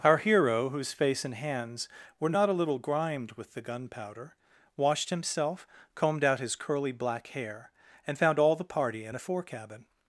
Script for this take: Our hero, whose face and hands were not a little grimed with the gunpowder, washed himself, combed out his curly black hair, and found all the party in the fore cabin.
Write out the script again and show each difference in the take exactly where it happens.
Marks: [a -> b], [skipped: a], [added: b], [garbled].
Our hero, whose face and hands were not a little grimed with the gunpowder, washed himself, combed out his curly black hair, and found all the party in [the -> a] fore cabin.